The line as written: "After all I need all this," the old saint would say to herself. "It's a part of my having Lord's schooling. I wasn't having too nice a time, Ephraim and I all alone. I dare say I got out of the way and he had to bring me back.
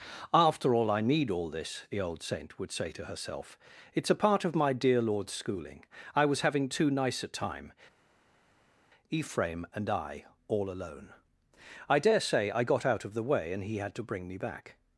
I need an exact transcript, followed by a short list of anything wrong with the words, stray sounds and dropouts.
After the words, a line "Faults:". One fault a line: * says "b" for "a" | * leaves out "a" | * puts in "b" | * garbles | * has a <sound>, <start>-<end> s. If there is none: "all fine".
"After all I need all this," the old saint would say to herself. "It's a part of my dear Lord's schooling. I was having too nice a time, Ephraim and I all alone. I dare say I got out of the way and he had to bring me back.
Faults:
* says "dear" for "having"
* says "was" for "wasn't"